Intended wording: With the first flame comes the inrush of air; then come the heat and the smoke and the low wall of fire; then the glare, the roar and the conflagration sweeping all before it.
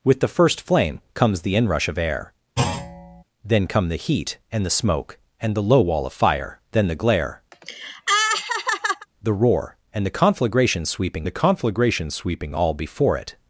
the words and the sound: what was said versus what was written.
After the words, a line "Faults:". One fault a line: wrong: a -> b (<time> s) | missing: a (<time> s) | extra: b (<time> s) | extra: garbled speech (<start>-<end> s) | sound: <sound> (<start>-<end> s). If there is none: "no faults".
With the first flame comes the inrush of air; then come the heat and the smoke and the low wall of fire; then the glare, the roar and the conflagration sweeping the conflagration sweeping all before it.
Faults:
sound: thud (2.6-3.2 s)
sound: laugh (7.5-9.1 s)
extra: the conflagration sweeping (11.2 s)